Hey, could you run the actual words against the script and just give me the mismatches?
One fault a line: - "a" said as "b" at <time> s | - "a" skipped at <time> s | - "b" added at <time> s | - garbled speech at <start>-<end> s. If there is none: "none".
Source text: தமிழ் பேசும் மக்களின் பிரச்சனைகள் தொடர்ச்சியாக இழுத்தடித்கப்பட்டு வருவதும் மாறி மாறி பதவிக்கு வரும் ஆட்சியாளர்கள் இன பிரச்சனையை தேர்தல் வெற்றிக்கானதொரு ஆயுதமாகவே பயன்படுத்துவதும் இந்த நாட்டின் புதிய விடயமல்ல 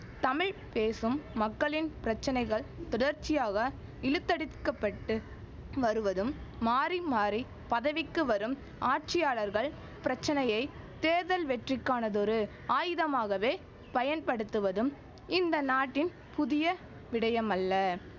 - "இன" skipped at 9.7 s